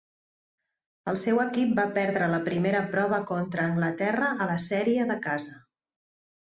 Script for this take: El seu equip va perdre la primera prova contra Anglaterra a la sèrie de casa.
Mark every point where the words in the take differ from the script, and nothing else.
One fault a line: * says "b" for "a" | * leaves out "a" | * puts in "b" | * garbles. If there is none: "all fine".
all fine